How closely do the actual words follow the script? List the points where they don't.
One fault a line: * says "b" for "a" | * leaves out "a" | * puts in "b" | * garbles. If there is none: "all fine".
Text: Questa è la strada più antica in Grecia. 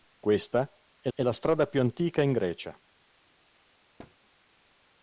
* puts in "è"